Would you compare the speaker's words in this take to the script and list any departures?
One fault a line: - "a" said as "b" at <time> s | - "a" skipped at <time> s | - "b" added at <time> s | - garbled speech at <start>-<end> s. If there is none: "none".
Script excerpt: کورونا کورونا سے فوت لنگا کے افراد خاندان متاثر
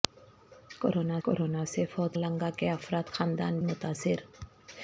none